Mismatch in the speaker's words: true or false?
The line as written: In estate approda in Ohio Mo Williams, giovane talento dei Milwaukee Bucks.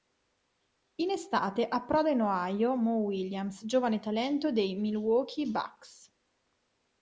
false